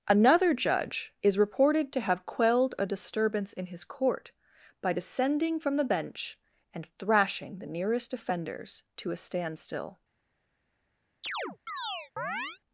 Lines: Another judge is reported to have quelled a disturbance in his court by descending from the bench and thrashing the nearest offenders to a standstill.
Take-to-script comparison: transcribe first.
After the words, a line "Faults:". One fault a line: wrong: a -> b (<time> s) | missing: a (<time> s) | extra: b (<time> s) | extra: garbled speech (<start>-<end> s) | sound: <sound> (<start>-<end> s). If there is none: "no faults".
Another judge is reported to have quelled a disturbance in his court by descending from the bench and thrashing the nearest offenders to a standstill.
Faults:
sound: chirp (11.2-12.6 s)